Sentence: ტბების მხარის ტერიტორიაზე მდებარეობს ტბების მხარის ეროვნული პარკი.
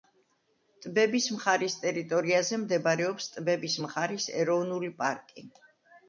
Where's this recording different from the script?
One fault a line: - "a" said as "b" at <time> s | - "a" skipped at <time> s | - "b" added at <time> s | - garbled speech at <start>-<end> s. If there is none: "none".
none